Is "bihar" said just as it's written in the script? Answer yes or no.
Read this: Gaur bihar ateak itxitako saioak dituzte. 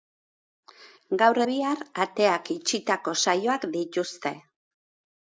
yes